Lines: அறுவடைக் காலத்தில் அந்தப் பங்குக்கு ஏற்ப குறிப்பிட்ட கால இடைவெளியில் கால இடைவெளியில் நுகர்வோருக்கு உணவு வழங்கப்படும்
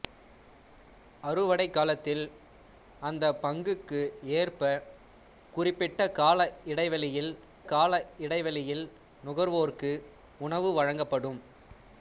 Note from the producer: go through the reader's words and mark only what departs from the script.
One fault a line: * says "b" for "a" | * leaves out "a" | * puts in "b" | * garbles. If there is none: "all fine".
all fine